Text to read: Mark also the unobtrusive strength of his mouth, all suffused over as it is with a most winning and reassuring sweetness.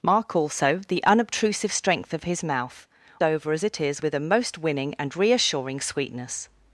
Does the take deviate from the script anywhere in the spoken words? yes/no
yes